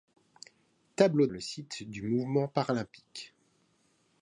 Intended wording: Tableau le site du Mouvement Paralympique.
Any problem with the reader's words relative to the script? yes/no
no